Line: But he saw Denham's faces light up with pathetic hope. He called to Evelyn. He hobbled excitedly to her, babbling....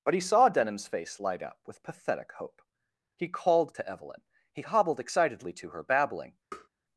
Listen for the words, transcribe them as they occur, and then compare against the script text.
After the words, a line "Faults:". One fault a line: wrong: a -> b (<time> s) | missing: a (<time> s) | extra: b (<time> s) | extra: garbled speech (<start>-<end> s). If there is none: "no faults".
But he saw Denham's face light up with pathetic hope. He called to Evelyn. He hobbled excitedly to her, babbling....
Faults:
wrong: faces -> face (0.9 s)